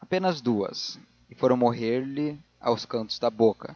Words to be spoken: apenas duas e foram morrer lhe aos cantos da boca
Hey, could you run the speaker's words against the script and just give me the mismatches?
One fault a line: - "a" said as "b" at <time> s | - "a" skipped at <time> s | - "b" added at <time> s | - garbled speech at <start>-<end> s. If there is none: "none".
none